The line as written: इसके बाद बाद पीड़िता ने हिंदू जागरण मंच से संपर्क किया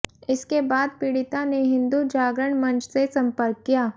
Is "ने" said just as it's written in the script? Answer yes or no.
yes